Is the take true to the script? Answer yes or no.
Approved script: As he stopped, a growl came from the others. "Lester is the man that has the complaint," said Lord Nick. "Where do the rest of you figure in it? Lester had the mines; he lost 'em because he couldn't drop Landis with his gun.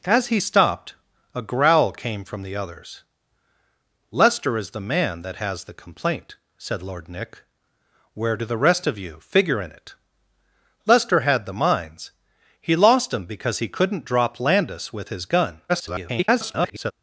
no